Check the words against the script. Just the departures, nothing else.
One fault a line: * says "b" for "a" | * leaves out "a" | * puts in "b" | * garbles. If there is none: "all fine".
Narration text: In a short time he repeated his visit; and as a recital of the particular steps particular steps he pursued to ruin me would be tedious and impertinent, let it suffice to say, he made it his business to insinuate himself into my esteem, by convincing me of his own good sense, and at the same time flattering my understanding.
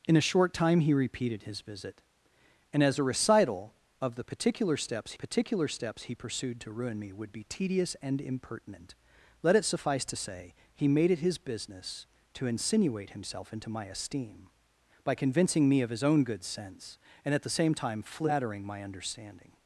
all fine